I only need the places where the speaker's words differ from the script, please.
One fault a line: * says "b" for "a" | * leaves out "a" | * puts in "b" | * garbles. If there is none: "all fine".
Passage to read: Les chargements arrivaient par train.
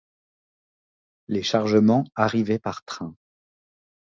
all fine